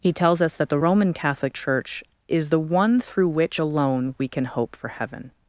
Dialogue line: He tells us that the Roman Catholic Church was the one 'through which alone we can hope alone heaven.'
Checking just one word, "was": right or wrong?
wrong